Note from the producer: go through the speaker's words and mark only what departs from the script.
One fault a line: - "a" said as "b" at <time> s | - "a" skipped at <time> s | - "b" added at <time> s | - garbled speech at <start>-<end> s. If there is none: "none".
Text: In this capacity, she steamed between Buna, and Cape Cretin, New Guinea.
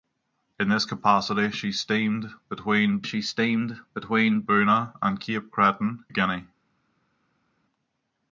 - "she steamed between" added at 3.0 s
- "New" skipped at 6.0 s